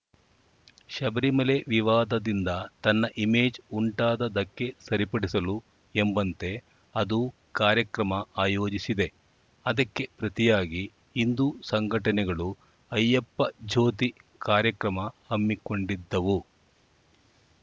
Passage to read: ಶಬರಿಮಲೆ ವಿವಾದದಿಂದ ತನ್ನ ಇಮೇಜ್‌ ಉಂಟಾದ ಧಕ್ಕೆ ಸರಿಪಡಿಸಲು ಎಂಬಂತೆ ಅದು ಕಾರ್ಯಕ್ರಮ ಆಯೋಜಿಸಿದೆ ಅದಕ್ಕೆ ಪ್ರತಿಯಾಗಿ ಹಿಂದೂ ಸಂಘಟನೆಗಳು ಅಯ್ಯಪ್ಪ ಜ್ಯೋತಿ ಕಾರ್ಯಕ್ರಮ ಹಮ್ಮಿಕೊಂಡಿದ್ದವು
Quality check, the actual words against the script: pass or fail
pass